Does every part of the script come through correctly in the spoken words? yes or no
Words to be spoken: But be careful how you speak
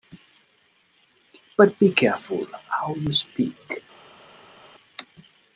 yes